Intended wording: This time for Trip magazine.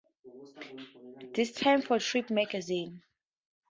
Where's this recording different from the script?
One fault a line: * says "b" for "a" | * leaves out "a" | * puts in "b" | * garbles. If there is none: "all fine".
all fine